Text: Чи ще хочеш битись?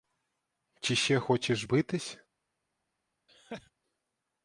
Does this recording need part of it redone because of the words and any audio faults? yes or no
yes